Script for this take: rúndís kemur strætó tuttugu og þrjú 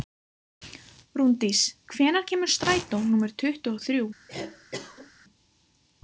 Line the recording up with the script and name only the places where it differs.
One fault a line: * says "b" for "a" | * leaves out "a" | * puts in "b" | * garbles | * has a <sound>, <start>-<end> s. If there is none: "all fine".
* puts in "hvenær"
* puts in "númer"
* has a cough, 4.3-5.1 s